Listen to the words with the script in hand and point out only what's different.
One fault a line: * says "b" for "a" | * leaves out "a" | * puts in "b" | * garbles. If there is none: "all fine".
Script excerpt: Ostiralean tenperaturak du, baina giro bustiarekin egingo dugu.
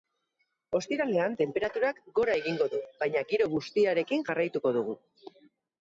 * puts in "gora egingo"
* says "jarraituko" for "egingo"